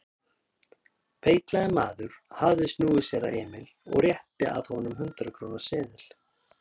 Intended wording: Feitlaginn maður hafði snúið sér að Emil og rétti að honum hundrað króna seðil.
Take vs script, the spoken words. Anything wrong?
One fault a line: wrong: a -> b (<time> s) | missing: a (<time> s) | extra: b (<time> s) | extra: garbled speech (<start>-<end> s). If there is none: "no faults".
no faults